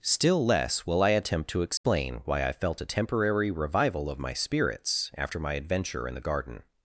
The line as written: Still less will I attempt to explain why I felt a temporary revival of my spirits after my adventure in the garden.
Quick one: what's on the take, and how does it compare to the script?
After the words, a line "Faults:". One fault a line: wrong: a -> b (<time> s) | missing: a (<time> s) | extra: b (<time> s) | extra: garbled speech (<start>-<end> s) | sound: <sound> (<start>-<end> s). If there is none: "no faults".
Still less will I attempt to explain why I felt a temporary revival of my spirits after my adventure in the garden.
Faults:
sound: dropout (1.8-1.8 s)